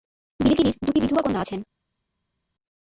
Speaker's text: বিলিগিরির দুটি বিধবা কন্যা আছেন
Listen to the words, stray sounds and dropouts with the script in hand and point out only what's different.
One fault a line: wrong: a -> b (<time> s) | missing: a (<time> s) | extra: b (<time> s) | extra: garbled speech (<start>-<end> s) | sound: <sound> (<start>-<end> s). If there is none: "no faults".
no faults